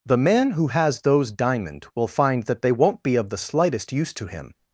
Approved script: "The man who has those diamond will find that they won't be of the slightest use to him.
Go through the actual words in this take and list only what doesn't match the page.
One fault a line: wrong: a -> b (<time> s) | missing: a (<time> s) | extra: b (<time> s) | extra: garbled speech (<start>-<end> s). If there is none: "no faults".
no faults